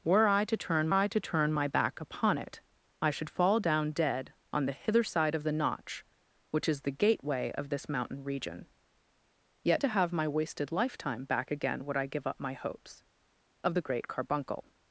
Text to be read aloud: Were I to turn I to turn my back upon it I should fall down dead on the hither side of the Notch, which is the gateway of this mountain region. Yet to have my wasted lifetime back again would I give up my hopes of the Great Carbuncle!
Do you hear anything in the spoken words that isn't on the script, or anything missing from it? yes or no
no